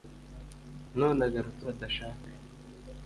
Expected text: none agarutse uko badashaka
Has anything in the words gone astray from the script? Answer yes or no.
yes